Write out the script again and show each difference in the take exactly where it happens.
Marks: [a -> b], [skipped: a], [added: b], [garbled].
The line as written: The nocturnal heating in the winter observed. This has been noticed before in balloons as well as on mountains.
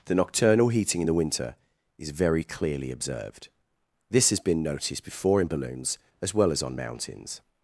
The nocturnal heating in the winter [added: is very clearly] observed. This has been noticed before in balloons as well as on mountains.